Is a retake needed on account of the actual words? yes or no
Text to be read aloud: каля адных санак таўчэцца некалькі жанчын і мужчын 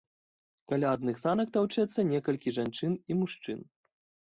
no